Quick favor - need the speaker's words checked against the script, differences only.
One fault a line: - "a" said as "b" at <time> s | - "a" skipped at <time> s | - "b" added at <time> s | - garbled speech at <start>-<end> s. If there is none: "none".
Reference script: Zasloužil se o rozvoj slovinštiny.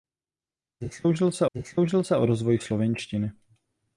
- "zasloužil se" added at 1.5 s